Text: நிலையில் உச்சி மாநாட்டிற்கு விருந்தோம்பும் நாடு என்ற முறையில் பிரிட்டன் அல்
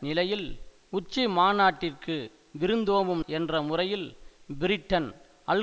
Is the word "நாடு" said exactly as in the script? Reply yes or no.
no